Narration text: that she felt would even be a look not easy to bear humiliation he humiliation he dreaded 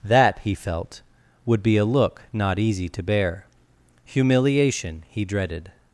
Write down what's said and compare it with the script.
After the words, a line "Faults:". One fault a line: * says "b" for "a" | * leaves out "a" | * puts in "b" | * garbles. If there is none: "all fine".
that he felt would be a look not easy to bear humiliation he dreaded
Faults:
* says "he" for "she"
* leaves out "even"
* leaves out "humiliation he"